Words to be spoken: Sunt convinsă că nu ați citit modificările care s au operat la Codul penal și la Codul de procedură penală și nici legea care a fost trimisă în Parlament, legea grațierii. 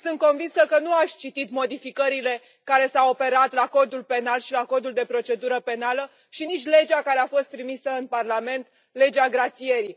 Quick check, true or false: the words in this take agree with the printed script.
true